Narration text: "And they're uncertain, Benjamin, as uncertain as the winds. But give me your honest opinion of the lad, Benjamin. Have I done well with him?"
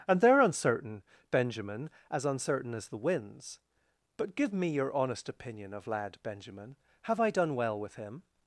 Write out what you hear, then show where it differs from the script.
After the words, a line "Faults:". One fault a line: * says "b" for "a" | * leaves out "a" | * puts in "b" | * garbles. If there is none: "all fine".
"And they're uncertain, Benjamin, as uncertain as the winds. But give me your honest opinion of lad, Benjamin. Have I done well with him?"
Faults:
* leaves out "the"